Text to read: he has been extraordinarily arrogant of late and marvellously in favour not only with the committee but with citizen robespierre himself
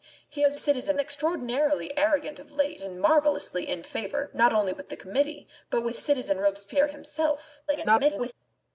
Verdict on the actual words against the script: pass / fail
fail